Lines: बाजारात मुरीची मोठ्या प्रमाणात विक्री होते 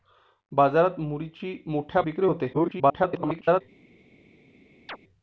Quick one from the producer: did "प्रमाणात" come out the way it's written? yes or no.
no